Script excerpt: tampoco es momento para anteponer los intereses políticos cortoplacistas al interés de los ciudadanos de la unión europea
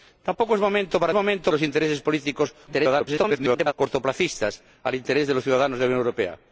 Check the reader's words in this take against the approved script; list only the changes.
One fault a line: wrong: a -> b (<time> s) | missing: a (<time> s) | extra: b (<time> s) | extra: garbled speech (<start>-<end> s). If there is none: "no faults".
wrong: anteponer -> momento (1.1 s)
extra: garbled speech (2.7-3.7 s)